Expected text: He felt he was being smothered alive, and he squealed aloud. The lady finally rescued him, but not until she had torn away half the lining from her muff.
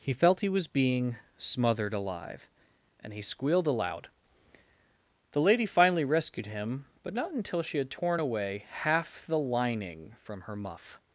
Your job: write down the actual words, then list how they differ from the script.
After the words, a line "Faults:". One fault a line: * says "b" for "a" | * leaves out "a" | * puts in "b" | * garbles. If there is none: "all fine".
He felt he was being smothered alive, and he squealed aloud. The lady finally rescued him, but not until she had torn away half the lining from her muff.
Faults:
all fine